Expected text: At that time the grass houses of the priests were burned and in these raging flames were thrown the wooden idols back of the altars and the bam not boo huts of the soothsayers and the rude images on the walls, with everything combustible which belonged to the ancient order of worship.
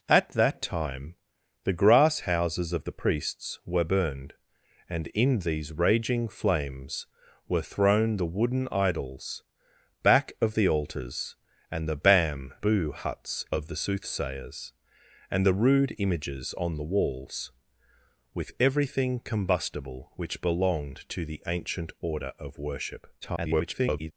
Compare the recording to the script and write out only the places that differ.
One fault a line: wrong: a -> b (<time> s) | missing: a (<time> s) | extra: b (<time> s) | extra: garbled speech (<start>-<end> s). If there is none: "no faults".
missing: not (12.5 s)
extra: garbled speech (23.2-24.1 s)